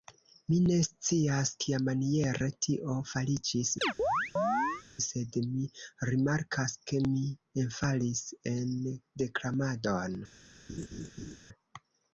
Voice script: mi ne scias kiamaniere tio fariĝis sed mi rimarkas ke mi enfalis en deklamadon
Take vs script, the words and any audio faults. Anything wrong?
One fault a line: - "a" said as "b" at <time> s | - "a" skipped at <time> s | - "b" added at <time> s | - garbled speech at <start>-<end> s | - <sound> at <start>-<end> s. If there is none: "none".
- chirp at 3.8-4.8 s
- laugh at 10.7-11.4 s